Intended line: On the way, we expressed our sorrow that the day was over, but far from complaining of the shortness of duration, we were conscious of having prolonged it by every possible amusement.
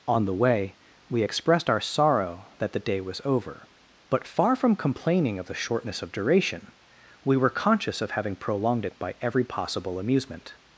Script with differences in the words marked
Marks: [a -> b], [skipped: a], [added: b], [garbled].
On the way, we expressed our sorrow that the day was over, but far from complaining of the shortness of duration, we were conscious of having prolonged it by every possible amusement.